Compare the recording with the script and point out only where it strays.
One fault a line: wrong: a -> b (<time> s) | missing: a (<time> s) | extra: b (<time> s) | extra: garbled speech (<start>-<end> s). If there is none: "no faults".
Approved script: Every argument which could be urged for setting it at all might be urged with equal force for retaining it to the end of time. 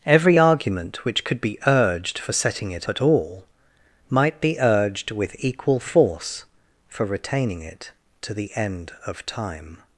no faults